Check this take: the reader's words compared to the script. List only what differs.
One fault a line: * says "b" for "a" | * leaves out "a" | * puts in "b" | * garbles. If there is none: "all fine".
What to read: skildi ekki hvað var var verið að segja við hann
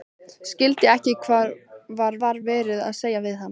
all fine